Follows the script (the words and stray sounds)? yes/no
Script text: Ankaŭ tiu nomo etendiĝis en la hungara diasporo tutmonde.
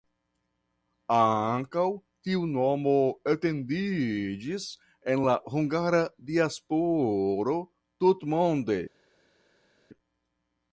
yes